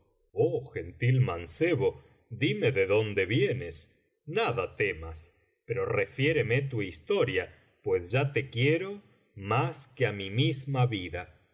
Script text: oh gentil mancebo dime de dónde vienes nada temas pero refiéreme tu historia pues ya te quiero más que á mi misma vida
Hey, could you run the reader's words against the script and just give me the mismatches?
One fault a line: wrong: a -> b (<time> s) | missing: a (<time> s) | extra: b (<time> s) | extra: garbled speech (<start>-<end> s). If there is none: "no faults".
no faults